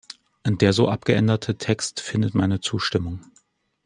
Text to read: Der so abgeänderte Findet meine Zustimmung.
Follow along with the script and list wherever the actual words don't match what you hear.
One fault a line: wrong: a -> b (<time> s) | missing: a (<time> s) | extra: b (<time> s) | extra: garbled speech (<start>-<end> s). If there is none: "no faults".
extra: Text (1.6 s)